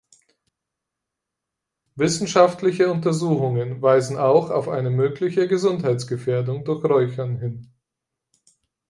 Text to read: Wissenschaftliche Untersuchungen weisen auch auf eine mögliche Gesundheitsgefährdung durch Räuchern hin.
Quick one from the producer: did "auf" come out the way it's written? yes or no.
yes